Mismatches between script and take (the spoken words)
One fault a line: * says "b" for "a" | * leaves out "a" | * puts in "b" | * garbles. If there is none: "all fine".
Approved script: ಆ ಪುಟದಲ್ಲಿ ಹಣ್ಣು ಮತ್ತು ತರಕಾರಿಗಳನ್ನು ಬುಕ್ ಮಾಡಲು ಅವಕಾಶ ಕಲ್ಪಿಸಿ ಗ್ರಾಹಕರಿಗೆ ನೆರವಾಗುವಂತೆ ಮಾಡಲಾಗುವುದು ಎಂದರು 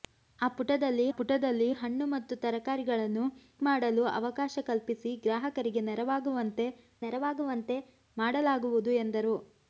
* puts in "ಪುಟದಲ್ಲಿ"
* leaves out "ಬುಕ್"
* puts in "ನೆರವಾಗುವಂತೆ"